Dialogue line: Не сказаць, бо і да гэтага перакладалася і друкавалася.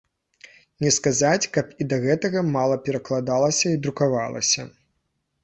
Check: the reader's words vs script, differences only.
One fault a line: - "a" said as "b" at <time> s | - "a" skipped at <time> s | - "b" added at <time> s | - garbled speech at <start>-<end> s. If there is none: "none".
- "бо" said as "каб" at 1.6 s
- "мала" added at 2.6 s